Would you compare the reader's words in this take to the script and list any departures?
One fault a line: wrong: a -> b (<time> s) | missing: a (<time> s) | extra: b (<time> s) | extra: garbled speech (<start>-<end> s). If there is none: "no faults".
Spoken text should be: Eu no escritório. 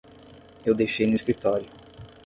extra: deixei (0.7 s)